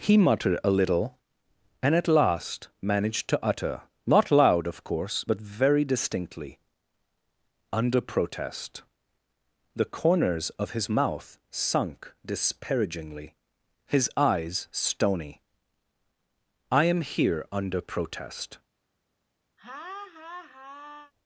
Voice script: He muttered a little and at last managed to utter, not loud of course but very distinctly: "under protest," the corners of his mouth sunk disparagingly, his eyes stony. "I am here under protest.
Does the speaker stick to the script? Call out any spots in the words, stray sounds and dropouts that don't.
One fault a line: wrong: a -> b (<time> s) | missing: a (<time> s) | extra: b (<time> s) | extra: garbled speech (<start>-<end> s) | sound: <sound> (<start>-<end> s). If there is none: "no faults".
sound: laugh (19.6-21.1 s)